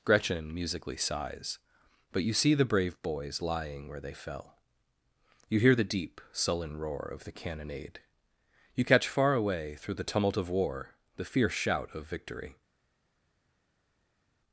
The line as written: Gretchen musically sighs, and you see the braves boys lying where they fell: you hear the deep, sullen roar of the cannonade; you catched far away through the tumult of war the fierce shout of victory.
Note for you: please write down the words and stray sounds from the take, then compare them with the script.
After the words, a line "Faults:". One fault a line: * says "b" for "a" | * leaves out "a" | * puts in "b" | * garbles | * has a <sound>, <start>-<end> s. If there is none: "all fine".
Gretchen musically sighs, but you see the brave boys lying where they fell: you hear the deep, sullen roar of the cannonade; you catch far away through the tumult of war the fierce shout of victory.
Faults:
* says "but" for "and"
* says "brave" for "braves"
* says "catch" for "catched"